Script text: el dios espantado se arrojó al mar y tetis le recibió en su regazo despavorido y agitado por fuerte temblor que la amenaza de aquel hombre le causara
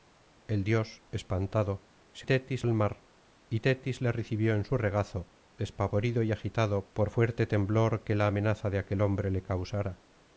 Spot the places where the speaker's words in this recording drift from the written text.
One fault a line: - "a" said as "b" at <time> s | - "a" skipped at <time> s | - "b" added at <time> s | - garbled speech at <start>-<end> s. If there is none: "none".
- "arrojó" said as "tetis" at 2.2 s